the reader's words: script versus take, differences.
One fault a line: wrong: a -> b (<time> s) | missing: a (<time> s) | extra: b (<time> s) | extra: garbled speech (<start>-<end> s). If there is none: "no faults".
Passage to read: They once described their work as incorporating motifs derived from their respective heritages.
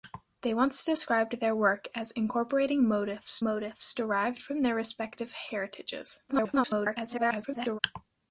extra: motifs (3.4 s)
extra: garbled speech (6.3-7.8 s)